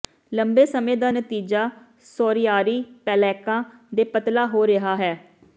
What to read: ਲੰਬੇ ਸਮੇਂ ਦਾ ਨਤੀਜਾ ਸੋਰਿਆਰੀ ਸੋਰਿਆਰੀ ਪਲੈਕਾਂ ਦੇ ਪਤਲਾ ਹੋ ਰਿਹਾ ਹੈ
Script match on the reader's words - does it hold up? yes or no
no